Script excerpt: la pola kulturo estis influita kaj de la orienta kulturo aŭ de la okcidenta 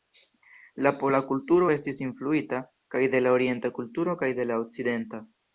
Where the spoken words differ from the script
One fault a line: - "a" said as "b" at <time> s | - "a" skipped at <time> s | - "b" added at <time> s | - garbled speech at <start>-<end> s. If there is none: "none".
- "aŭ" said as "kaj" at 4.2 s